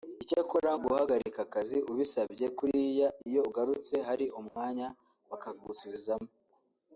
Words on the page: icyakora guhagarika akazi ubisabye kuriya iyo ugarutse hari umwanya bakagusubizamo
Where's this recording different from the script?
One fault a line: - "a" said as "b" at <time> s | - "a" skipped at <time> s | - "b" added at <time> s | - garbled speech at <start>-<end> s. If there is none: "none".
none